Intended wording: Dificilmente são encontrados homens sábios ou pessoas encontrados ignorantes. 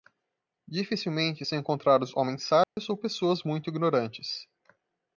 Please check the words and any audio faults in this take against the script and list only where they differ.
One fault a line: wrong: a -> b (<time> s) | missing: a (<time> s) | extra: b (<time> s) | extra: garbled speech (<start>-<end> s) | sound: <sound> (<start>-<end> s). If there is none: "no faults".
sound: dropout (2.6-2.8 s)
wrong: encontrados -> muito (3.4 s)